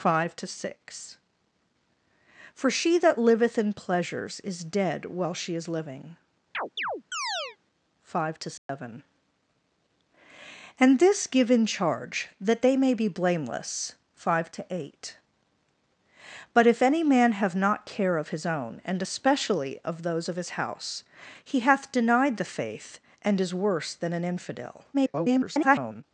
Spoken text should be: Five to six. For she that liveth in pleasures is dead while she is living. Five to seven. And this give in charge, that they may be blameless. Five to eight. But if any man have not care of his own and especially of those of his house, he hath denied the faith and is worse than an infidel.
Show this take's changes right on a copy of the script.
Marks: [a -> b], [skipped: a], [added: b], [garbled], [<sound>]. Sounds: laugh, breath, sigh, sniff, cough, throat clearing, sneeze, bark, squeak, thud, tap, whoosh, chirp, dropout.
Five to six. For she that liveth in pleasures is dead while she is living. [chirp] Five to seven. [dropout] And this give in charge, that they may be blameless. Five to eight. But if any man have not care of his own and especially of those of his house, he hath denied the faith and is worse than an infidel. [garbled]